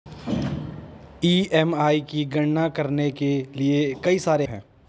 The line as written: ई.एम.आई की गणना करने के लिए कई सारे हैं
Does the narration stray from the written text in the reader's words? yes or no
no